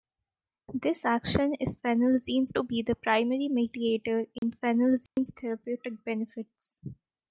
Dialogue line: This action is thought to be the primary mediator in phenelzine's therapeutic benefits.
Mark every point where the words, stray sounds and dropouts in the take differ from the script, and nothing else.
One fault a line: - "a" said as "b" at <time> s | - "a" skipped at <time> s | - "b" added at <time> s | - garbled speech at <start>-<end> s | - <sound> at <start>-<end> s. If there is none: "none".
- "thought" said as "phenelzine's" at 1.7 s
- dropout at 4.4-4.4 s
- dropout at 5.1-5.2 s